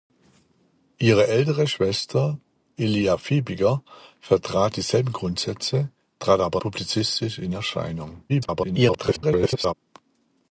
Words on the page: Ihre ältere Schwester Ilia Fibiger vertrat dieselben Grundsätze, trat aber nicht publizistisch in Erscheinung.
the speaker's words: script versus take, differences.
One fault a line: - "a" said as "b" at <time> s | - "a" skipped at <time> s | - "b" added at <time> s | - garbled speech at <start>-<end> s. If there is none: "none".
- "nicht" skipped at 6.6 s
- garbled speech at 8.3-9.7 s